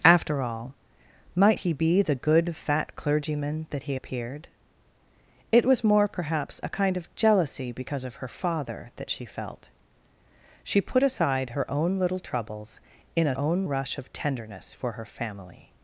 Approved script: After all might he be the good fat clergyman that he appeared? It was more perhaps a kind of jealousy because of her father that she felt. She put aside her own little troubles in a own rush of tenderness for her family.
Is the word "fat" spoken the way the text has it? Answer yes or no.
yes